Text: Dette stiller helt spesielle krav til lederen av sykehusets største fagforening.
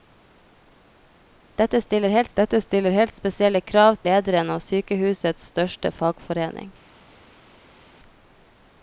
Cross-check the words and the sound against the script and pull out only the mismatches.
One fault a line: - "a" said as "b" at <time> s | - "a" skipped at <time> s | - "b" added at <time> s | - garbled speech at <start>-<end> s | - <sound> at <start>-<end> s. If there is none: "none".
- "dette stiller helt" added at 2.4 s
- "til" skipped at 4.0 s